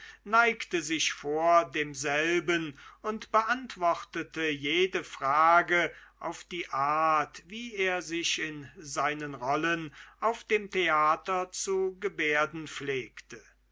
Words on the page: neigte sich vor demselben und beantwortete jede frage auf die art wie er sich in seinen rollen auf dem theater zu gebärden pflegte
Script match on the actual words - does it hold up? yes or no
yes